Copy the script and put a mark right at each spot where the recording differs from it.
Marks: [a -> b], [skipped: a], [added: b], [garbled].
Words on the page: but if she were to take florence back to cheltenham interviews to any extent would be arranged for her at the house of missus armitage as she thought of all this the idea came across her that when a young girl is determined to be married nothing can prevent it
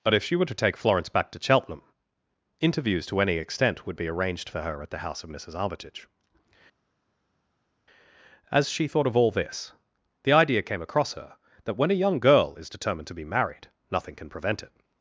but if she were to take florence back to cheltenham interviews to any extent would be arranged for her at the house of missus armitage as she thought of all this the idea came across her that when a young girl is determined to be married nothing can prevent it